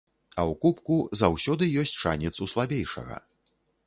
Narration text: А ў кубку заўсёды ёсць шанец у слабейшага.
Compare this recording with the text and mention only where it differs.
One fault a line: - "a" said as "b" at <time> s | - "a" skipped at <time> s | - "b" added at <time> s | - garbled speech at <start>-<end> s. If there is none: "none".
none